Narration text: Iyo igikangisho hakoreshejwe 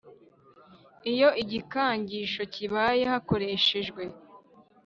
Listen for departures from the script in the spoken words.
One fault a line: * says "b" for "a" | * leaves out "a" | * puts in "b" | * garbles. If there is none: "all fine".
* puts in "kibaye"